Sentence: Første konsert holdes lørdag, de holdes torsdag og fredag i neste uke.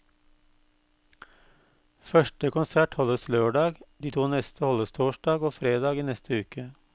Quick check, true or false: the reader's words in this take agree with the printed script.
false